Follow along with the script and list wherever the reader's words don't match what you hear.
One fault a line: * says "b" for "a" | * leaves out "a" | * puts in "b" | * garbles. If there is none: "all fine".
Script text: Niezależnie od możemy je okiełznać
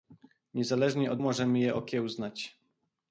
all fine